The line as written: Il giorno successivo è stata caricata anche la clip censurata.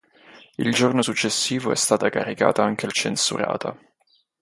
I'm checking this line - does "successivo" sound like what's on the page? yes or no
yes